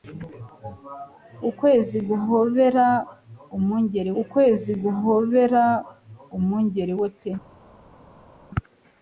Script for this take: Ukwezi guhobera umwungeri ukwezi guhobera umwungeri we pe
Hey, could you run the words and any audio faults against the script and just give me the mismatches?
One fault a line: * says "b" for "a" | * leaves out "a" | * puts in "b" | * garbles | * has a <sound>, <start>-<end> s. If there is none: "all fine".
all fine